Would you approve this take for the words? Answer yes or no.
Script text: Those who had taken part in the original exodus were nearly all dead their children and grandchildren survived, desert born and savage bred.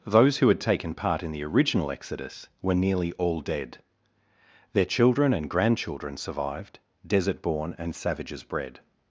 no